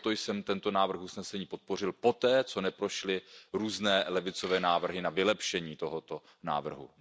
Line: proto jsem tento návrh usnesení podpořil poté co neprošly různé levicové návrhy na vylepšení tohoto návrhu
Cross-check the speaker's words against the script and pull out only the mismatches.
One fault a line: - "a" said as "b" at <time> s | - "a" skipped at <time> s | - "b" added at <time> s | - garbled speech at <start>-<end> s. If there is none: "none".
none